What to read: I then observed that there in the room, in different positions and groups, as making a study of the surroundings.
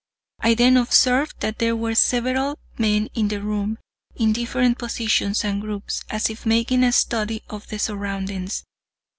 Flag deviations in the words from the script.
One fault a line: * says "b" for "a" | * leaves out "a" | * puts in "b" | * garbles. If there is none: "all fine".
* puts in "were several men"
* puts in "if"